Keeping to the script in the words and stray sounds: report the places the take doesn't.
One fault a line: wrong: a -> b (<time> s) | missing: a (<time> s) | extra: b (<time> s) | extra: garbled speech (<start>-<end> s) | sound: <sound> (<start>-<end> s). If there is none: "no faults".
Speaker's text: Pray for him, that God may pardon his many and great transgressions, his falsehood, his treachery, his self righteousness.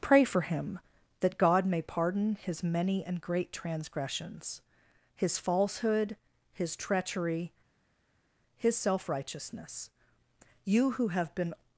extra: You who have been (10.6 s)